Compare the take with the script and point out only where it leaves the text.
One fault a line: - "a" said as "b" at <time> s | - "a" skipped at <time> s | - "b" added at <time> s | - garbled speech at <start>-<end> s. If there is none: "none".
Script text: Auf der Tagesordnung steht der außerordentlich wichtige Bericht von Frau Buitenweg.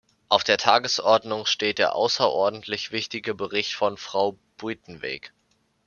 none